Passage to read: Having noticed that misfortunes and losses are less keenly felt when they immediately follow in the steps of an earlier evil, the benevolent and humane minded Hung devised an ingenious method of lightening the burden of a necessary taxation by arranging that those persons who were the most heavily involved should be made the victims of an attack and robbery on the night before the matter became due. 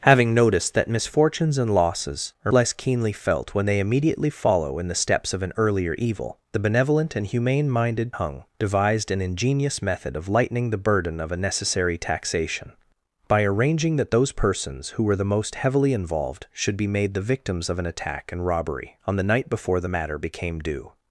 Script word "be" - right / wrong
right